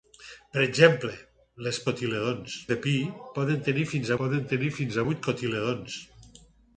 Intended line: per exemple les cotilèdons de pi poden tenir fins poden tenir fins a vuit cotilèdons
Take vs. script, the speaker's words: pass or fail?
pass